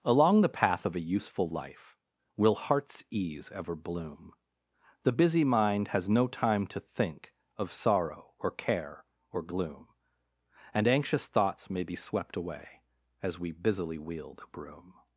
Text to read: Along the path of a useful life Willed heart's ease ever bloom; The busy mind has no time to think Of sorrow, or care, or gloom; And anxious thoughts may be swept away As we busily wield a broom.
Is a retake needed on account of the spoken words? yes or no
yes